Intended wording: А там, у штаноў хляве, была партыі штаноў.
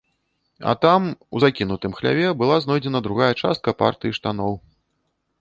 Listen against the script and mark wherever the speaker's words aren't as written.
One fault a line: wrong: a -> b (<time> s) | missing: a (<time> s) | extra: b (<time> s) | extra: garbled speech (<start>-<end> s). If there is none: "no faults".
wrong: штаноў -> закінутым (1.4 s)
extra: знойдзена другая частка (2.7 s)